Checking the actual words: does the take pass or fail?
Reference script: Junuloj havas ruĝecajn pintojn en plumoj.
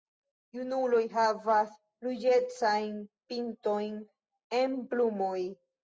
pass